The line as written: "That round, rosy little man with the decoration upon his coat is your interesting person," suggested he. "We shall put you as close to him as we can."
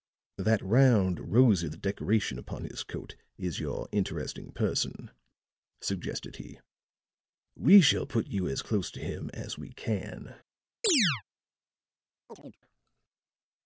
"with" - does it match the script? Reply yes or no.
no